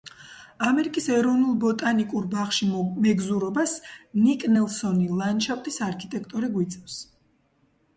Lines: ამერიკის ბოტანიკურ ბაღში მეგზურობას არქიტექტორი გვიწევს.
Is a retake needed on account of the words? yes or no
yes